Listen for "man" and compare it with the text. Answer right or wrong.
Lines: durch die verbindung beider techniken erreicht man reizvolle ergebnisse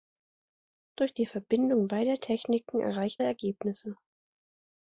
wrong